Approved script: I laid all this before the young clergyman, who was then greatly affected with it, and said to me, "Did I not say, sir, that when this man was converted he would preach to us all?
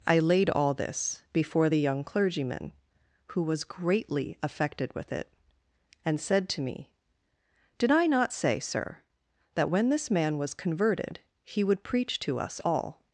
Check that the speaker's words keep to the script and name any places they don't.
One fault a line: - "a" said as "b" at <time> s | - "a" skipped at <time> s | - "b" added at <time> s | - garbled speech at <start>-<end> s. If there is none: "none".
- "then" skipped at 3.7 s